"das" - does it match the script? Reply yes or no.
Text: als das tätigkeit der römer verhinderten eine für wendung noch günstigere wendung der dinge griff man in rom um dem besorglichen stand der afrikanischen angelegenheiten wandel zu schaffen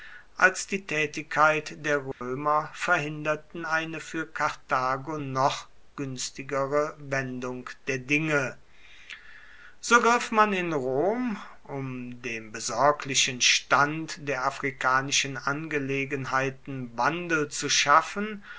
no